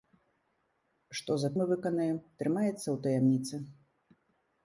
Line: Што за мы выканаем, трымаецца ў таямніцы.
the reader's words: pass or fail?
pass